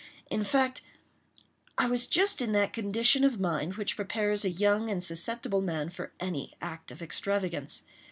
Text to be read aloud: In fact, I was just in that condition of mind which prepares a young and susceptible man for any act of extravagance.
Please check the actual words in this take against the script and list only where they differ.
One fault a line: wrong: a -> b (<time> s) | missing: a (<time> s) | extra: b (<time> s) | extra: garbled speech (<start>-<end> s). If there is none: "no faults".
no faults